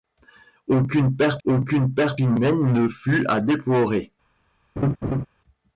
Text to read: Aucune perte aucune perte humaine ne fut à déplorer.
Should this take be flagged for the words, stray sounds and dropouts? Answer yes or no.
yes